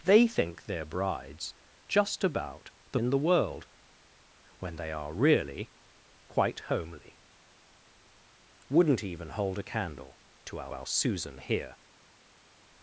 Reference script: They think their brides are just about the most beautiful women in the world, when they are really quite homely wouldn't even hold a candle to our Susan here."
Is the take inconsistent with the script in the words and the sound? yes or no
yes